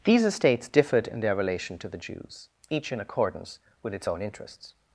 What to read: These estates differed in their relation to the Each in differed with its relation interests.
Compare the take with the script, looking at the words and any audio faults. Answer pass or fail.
fail